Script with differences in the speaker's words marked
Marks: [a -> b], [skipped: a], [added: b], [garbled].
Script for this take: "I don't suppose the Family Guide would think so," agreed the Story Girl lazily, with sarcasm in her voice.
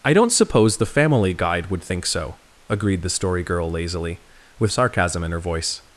"I don't suppose the Family Guide would think so," agreed the Story Girl lazily, with sarcasm in her voice.